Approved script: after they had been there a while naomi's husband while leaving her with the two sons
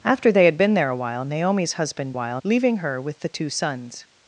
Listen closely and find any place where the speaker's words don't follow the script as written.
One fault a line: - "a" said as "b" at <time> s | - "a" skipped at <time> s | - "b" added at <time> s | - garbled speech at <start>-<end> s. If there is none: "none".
none